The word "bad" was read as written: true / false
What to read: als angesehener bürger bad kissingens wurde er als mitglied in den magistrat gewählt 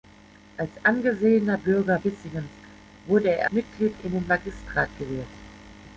false